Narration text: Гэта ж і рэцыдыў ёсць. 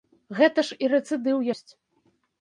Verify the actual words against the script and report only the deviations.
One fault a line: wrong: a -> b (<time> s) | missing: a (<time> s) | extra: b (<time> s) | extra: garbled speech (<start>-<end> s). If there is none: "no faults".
no faults